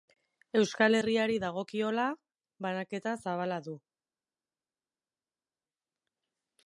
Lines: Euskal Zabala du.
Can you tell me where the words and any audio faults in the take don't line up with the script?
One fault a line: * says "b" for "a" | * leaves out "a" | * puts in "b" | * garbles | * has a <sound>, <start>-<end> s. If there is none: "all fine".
* puts in "Herriari dagokiola banaketa"